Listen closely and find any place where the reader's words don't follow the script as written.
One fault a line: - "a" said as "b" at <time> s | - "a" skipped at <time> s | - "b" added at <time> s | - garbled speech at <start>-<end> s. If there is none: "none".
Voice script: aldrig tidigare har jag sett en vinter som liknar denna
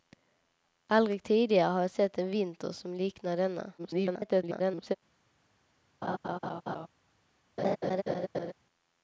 - garbled speech at 3.8-5.0 s